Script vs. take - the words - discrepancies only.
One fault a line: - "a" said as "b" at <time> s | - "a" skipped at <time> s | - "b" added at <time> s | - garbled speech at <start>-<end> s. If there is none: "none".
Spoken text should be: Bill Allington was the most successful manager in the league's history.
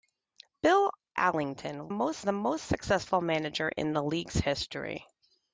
- "was" said as "most" at 1.9 s